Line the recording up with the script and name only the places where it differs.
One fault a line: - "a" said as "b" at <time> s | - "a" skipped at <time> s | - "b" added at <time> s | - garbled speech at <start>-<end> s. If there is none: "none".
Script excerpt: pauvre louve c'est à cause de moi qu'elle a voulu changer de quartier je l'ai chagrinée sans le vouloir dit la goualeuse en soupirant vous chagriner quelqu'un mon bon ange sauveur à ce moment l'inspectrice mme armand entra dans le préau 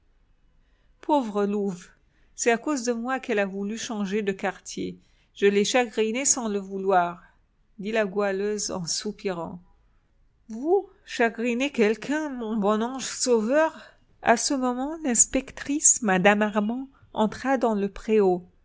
none